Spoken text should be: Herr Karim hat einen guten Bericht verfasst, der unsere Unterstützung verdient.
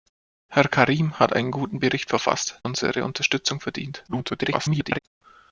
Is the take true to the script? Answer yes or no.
no